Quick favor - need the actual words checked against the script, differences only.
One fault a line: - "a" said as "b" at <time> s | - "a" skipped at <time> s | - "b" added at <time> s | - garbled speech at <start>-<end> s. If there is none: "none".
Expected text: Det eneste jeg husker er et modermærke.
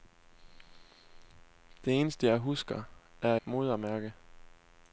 - "et" skipped at 3.4 s